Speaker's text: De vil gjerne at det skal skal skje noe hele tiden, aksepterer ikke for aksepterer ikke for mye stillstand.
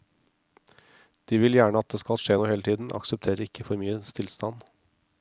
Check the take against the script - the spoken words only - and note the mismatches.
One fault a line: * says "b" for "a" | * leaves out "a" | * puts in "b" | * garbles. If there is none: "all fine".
* leaves out "skal"
* leaves out "aksepterer ikke for"